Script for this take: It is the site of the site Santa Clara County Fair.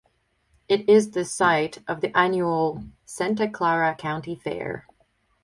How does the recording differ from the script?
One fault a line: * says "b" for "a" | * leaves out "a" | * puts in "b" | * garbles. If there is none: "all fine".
* says "annual" for "site"